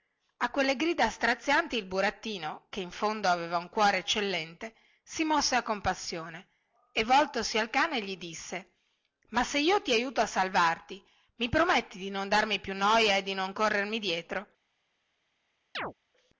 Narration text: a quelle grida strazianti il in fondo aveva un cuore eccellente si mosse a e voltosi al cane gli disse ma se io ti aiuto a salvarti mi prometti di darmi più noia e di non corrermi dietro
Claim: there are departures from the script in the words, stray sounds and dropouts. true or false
true